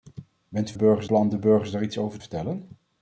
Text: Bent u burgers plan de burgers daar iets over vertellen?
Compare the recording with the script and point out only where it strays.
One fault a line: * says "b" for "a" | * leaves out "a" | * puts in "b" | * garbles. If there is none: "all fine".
all fine